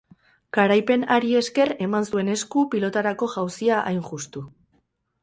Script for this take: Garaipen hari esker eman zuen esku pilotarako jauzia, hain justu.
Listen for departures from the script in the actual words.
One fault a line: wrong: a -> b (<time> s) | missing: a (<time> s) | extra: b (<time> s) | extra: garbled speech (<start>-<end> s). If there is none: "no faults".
no faults